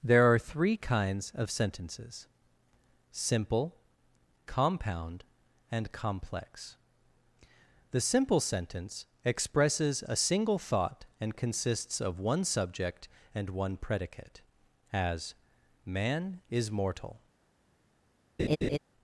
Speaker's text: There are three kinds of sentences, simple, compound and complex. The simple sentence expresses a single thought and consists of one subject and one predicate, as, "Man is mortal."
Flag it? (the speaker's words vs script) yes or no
no